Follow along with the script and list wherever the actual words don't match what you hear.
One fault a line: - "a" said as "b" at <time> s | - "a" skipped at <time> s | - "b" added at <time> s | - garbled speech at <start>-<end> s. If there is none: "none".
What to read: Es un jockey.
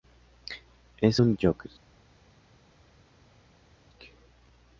none